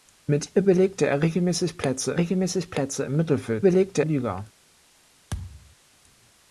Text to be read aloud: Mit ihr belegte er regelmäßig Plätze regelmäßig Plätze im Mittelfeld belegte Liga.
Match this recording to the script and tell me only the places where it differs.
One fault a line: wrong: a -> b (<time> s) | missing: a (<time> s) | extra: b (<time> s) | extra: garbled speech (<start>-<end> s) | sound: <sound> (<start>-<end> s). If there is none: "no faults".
sound: thud (5.3-5.8 s)